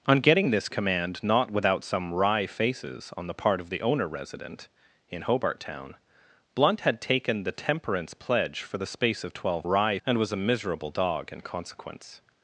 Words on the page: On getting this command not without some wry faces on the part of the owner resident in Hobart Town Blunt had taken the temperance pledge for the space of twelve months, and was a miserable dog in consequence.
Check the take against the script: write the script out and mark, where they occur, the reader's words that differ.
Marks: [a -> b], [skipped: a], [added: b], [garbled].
On getting this command not without some wry faces on the part of the owner resident in Hobart Town Blunt had taken the temperance pledge for the space of twelve [months, -> wry] and was a miserable dog in consequence.